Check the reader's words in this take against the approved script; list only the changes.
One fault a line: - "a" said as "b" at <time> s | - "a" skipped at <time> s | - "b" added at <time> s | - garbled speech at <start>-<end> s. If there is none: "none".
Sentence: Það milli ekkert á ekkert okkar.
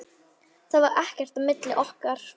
- "milli" said as "var" at 0.8 s
- "ekkert" said as "milli" at 1.5 s